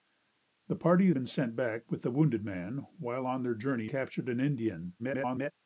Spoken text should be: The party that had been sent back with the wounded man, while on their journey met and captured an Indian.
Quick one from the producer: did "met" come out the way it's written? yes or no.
no